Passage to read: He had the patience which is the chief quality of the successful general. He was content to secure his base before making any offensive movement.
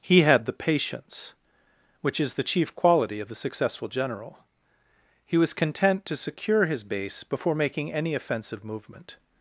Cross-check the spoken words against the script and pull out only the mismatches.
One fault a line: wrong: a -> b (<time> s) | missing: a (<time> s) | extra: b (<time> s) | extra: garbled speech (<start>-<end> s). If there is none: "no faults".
no faults